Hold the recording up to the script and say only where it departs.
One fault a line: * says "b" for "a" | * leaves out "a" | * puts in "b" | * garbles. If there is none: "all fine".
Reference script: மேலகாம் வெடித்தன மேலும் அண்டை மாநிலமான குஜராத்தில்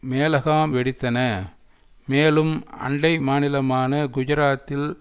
all fine